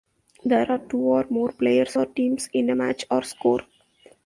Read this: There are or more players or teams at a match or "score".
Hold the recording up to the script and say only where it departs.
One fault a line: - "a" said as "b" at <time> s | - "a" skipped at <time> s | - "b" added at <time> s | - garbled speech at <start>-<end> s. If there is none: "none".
- "two" added at 0.8 s
- "at" said as "in" at 2.5 s